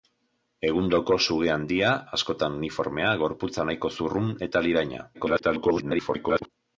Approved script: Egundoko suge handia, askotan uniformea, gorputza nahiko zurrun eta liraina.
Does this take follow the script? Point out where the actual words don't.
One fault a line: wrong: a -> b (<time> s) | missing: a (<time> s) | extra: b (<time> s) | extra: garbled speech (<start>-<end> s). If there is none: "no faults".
extra: garbled speech (5.1-6.5 s)